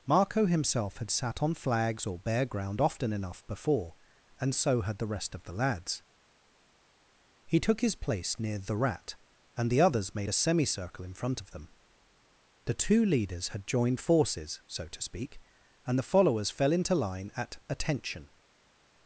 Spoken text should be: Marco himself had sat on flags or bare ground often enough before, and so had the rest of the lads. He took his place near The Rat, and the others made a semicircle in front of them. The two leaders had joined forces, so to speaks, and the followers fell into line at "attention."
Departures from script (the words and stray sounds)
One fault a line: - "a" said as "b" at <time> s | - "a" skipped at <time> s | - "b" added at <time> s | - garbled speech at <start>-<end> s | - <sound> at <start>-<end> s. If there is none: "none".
- "speaks" said as "speak" at 15.0 s